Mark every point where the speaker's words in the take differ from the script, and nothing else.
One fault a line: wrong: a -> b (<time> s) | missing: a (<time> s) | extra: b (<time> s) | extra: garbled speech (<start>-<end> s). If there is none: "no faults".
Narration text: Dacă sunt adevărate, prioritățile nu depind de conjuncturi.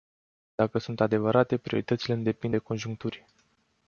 no faults